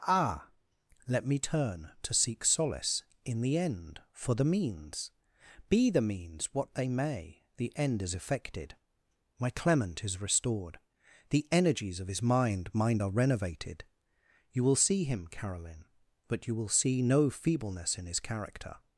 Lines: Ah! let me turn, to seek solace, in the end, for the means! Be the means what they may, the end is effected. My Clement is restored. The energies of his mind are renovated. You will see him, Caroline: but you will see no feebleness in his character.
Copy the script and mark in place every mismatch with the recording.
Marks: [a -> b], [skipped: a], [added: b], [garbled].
Ah! let me turn, to seek solace, in the end, for the means! Be the means what they may, the end is effected. My Clement is restored. The energies of his mind [added: mind] are renovated. You will see him, Caroline: but you will see no feebleness in his character.